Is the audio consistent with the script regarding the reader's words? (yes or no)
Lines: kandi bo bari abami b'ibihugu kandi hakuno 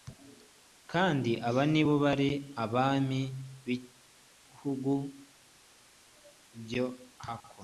no